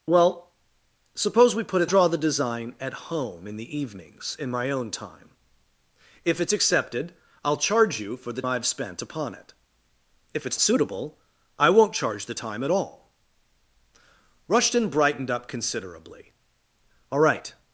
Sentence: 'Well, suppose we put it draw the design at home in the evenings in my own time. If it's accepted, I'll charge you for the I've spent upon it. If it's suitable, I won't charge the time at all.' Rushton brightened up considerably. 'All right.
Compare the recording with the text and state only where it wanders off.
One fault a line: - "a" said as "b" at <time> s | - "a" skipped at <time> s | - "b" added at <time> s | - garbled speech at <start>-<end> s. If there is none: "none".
none